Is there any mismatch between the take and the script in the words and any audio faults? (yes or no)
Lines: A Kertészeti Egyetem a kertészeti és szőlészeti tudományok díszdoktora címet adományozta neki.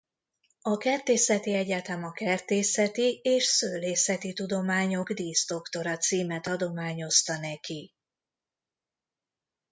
no